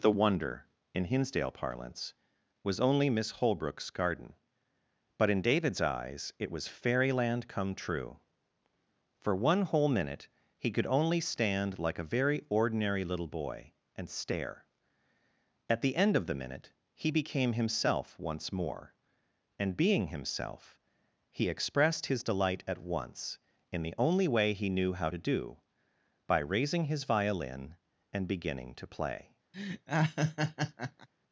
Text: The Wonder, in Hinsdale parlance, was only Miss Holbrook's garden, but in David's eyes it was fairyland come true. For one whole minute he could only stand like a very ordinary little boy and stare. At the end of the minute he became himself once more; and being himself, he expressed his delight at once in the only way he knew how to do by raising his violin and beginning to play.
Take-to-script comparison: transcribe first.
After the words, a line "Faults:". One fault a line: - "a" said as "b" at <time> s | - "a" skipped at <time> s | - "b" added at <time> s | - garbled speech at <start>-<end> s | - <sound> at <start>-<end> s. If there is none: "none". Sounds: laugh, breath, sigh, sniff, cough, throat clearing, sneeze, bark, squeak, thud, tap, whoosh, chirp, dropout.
The Wonder, in Hinsdale parlance, was only Miss Holbrook's garden, but in David's eyes it was fairyland come true. For one whole minute he could only stand like a very ordinary little boy and stare. At the end of the minute he became himself once more; and being himself, he expressed his delight at once in the only way he knew how to do by raising his violin and beginning to play.
Faults:
- laugh at 29.5-31.1 s